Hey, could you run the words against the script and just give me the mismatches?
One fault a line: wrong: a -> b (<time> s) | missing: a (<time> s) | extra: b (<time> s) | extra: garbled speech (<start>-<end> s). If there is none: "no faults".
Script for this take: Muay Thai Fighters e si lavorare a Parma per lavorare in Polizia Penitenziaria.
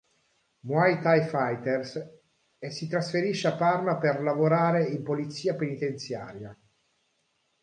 wrong: lavorare -> trasferisce (2.9 s)